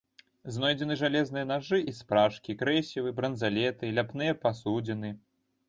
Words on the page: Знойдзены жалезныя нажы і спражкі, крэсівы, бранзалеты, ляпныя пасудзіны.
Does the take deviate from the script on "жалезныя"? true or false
false